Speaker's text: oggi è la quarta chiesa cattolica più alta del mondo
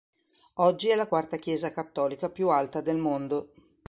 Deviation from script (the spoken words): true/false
false